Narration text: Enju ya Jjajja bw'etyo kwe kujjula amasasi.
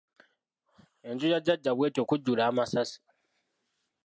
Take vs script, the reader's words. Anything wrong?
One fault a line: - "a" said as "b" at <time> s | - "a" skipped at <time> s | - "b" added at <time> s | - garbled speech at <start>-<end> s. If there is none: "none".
- "kwe" skipped at 2.0 s